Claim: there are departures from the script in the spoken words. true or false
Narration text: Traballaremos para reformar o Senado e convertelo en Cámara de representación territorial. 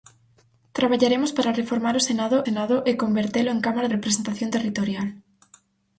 true